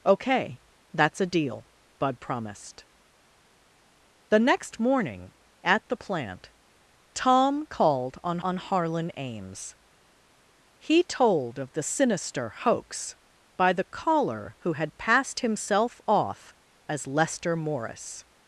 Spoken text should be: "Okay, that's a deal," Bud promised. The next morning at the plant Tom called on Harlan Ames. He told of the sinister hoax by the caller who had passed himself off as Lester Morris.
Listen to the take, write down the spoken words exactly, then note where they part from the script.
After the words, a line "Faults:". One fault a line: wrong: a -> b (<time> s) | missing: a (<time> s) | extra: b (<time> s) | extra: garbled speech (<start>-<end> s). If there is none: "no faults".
"Okay, that's a deal," Bud promised. The next morning at the plant Tom called on on Harlan Ames. He told of the sinister hoax by the caller who had passed himself off as Lester Morris.
Faults:
extra: on (8.4 s)